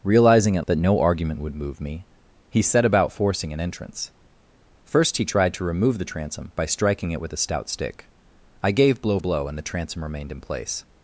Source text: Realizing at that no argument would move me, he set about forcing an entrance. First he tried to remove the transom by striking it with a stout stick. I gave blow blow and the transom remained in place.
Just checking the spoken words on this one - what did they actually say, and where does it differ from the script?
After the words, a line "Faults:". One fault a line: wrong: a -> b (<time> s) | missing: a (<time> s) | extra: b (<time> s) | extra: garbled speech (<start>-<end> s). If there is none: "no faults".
Realizing at that no argument would move me, he set about forcing an entrance. First he tried to remove the transom by striking it with a stout stick. I gave blow blow and the transom remained in place.
Faults:
no faults